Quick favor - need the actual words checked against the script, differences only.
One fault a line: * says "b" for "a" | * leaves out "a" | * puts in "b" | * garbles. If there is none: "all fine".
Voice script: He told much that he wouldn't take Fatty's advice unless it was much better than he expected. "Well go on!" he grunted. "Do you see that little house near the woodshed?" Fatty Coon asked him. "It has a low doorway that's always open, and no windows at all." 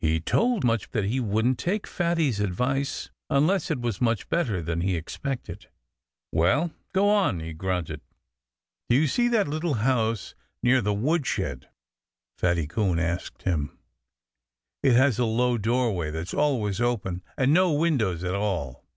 all fine